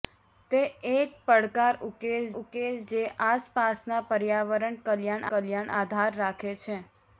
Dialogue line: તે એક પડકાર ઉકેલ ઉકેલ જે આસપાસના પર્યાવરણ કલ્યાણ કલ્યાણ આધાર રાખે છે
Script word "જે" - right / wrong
right